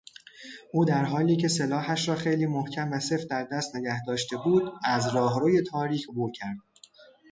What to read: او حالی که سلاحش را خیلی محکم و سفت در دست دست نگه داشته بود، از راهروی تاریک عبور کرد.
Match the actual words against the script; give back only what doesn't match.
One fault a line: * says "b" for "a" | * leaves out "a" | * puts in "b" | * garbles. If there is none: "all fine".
* puts in "در"
* leaves out "دست"